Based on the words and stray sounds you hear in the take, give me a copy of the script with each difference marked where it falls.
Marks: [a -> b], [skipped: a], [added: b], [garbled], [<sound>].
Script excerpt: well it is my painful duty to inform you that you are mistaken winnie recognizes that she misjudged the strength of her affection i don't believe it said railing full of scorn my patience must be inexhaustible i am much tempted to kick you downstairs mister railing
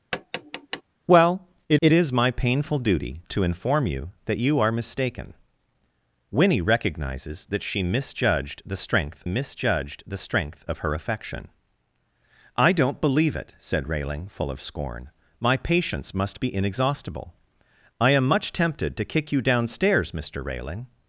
[tap] well it [added: it] is my painful duty to inform you that you are mistaken winnie recognizes that she misjudged the strength [added: misjudged the strength] of her affection i don't believe it said railing full of scorn my patience must be inexhaustible i am much tempted to kick you downstairs mister railing